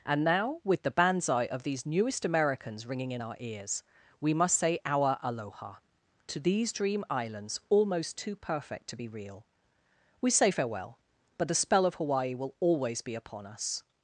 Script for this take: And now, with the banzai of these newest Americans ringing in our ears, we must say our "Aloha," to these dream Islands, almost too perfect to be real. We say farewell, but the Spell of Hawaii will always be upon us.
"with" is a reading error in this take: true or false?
false